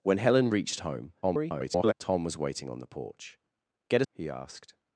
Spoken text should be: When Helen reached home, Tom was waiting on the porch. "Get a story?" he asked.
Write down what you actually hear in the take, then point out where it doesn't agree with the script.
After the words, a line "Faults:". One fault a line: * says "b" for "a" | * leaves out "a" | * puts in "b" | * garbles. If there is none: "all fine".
When Helen reached home, [garbled] Tom was waiting on the porch. "Get a?" he asked.
Faults:
* garbles
* leaves out "story"